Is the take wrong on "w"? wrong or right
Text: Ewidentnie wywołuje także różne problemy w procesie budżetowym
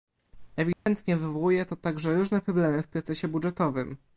right